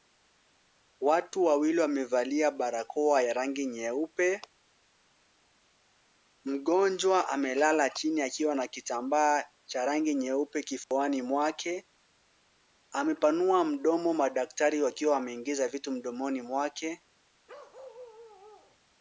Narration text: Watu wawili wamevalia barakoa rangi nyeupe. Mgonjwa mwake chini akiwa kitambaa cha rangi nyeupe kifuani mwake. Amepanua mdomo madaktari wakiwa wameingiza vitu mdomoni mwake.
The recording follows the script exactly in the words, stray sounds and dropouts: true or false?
false